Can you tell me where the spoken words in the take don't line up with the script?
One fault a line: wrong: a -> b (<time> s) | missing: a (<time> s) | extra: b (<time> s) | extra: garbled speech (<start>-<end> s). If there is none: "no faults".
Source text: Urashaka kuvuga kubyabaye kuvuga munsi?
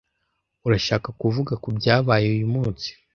wrong: kuvuga -> uyu (2.4 s)